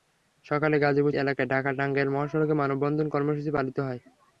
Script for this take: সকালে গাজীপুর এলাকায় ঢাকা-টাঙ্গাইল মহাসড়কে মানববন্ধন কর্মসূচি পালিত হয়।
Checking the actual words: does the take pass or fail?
pass